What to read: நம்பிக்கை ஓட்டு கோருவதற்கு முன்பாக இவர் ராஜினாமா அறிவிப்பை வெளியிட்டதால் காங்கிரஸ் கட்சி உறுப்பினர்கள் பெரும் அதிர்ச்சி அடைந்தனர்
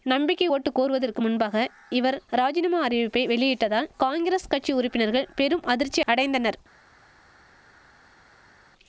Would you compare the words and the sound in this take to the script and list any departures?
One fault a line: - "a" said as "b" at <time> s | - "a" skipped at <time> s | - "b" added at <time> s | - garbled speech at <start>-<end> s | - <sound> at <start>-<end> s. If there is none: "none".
none